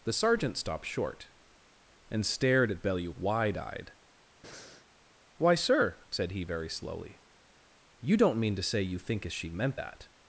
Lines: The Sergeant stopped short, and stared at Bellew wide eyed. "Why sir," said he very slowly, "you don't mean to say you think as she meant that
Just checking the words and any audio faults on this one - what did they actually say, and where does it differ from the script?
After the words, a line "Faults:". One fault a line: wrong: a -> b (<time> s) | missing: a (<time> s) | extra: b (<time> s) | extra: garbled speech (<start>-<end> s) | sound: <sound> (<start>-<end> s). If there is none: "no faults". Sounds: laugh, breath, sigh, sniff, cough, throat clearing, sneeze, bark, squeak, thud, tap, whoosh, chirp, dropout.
The Sergeant stopped short, and stared at Bellew wide eyed. "Why sir," said he very slowly, "you don't mean to say you think as she meant that
Faults:
sound: breath (4.4-4.9 s)